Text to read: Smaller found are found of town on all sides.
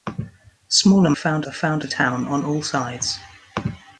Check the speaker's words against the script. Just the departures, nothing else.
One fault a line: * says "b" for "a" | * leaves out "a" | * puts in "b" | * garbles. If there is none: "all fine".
all fine